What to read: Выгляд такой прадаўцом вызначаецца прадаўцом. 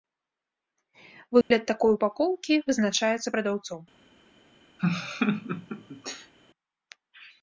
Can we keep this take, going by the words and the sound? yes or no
no